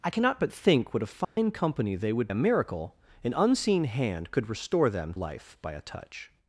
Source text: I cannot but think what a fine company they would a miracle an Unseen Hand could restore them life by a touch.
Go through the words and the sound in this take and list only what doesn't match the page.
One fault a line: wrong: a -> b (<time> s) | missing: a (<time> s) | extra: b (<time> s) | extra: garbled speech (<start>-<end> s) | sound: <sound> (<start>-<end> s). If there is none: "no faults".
sound: dropout (1.2-1.4 s)